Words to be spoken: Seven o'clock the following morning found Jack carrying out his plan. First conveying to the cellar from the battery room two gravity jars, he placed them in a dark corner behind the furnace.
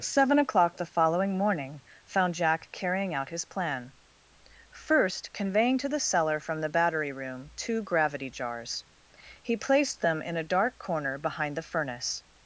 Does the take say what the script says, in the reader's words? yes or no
yes